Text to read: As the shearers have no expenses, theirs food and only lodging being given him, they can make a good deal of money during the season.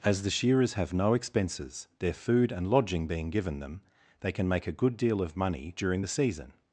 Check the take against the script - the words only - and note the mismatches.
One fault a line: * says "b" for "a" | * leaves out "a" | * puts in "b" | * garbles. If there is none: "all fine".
* says "their" for "theirs"
* leaves out "only"
* says "them" for "him"